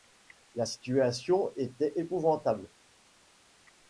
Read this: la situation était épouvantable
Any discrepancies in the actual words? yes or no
no